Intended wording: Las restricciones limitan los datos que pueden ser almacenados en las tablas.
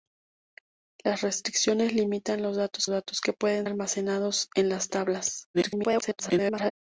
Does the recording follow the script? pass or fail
fail